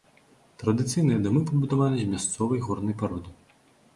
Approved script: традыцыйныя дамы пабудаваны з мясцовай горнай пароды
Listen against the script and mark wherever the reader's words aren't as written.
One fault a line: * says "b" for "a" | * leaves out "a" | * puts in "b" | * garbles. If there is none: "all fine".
all fine